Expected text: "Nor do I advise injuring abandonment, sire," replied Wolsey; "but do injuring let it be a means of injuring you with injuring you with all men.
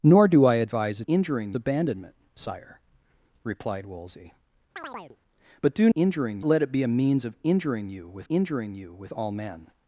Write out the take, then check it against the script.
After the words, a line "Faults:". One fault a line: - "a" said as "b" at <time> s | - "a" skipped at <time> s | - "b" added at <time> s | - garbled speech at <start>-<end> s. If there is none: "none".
"Nor do I advise injuring abandonment, sire," replied Wolsey; "but do injuring let it be a means of injuring you with injuring you with all men.
Faults:
none